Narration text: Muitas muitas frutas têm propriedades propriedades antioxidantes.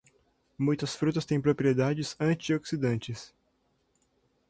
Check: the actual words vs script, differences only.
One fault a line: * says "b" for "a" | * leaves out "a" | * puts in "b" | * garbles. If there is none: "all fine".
* leaves out "muitas"
* leaves out "propriedades"